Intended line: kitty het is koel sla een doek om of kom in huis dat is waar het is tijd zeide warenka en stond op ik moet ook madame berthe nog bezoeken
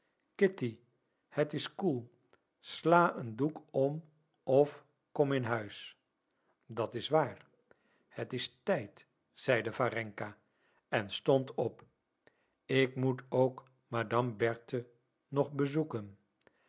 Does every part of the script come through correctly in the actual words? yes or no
yes